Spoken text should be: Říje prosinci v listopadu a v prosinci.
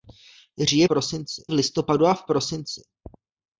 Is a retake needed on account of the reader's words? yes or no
no